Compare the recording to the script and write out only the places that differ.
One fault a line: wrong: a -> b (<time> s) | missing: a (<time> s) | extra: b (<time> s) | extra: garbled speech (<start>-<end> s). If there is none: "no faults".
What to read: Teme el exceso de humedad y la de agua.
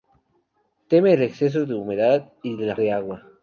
no faults